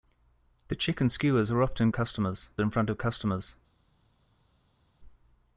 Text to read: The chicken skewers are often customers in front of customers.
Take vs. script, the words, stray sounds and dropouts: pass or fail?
pass